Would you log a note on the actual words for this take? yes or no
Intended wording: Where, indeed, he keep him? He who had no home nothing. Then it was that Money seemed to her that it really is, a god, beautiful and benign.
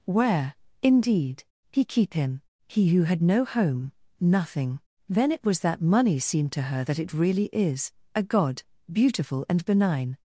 no